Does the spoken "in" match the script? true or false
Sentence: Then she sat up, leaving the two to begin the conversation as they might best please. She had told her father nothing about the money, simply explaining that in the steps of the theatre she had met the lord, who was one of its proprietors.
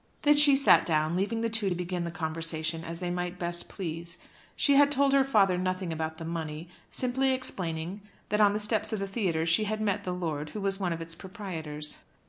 false